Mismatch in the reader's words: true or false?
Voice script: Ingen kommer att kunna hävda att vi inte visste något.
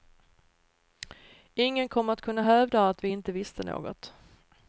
false